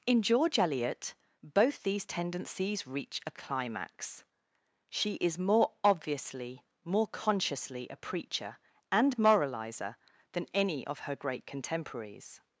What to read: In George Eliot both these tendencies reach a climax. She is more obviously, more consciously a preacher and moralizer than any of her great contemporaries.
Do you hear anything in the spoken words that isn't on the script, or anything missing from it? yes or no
no